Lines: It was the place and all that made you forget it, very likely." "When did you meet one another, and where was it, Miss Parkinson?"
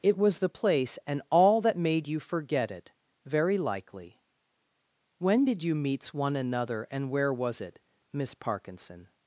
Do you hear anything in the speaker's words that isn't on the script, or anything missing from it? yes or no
yes